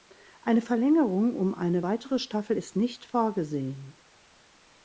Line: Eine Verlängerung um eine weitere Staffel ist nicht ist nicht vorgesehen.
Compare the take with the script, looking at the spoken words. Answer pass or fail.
fail